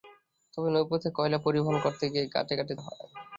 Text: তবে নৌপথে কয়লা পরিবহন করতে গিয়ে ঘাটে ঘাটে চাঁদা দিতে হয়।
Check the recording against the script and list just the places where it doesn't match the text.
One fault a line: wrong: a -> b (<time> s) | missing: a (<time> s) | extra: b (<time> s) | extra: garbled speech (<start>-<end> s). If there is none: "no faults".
missing: চাঁদা দিতে (2.7 s)